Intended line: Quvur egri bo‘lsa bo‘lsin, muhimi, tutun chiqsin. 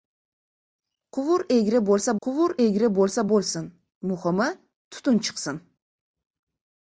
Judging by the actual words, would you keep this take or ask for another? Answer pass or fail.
fail